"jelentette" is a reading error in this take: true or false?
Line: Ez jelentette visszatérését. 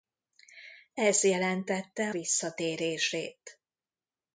false